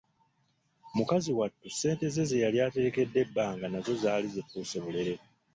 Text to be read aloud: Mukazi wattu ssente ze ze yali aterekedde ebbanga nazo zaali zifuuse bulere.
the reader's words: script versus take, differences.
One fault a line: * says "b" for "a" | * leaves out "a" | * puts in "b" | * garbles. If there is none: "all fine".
all fine